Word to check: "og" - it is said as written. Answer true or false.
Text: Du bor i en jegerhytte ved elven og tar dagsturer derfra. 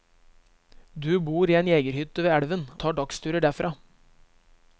false